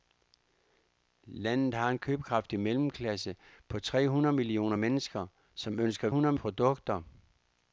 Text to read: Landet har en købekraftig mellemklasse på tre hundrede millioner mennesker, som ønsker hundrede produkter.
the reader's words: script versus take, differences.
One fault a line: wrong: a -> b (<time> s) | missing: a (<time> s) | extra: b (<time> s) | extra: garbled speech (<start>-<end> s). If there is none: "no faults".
no faults